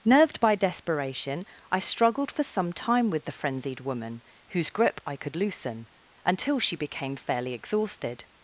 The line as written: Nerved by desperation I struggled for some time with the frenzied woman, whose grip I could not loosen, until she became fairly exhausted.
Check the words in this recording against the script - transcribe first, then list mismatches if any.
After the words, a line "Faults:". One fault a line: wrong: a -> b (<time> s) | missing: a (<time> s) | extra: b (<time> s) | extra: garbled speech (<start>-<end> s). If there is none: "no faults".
Nerved by desperation I struggled for some time with the frenzied woman, whose grip I could loosen, until she became fairly exhausted.
Faults:
missing: not (5.4 s)